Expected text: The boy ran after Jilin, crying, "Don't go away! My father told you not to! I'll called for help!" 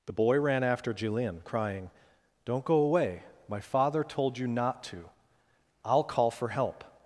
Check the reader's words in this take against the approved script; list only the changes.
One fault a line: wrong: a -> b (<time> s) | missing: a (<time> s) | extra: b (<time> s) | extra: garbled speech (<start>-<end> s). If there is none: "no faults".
wrong: called -> call (6.0 s)